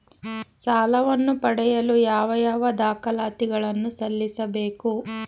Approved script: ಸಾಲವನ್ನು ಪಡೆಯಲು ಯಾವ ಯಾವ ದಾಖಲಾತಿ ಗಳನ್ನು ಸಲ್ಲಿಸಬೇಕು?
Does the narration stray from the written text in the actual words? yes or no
no